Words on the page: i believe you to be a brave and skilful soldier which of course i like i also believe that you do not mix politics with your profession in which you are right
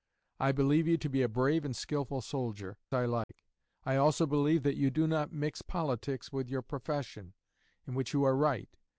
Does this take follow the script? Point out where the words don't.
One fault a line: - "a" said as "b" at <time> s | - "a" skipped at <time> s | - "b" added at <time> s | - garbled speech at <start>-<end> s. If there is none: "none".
- "which of course" skipped at 2.8 s